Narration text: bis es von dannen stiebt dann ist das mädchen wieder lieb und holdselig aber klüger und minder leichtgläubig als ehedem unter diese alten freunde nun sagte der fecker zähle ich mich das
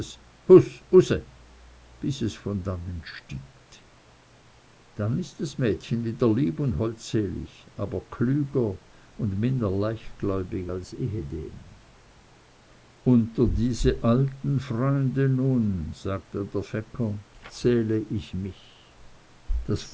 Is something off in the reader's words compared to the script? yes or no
no